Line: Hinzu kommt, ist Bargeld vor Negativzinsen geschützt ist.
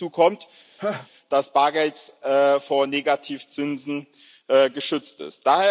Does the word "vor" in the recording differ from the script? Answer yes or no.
no